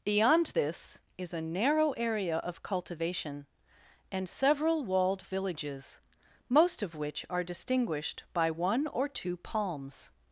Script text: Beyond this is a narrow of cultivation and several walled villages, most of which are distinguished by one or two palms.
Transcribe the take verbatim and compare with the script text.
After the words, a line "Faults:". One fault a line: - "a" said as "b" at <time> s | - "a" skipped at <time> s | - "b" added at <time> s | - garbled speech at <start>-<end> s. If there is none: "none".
Beyond this is a narrow area of cultivation and several walled villages, most of which are distinguished by one or two palms.
Faults:
- "area" added at 1.9 s